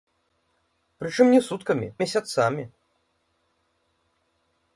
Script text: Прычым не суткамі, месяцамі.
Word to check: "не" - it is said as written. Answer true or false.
true